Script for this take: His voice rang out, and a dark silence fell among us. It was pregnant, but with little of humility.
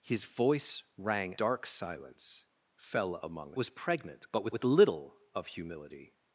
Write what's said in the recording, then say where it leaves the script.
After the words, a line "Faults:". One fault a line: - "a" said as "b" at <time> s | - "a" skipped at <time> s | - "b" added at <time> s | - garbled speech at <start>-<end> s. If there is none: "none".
His voice rang dark silence fell among was pregnant, but with with little of humility.
Faults:
- "out and a" skipped at 1.4 s
- "us It" skipped at 3.5 s
- "with" added at 4.5 s